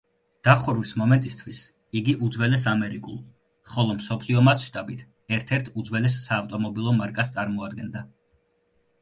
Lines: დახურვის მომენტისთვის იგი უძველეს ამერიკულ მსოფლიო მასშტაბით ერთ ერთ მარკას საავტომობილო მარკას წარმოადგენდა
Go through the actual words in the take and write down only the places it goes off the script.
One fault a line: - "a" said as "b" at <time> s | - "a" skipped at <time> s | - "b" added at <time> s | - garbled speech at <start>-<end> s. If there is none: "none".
- "ხოლო" added at 3.7 s
- "მარკას" said as "უძველეს" at 5.8 s